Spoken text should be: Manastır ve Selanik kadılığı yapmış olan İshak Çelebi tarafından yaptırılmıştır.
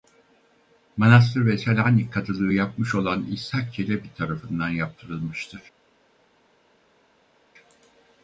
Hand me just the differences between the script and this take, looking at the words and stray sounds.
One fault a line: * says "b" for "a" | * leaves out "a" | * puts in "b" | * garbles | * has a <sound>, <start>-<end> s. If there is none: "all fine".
all fine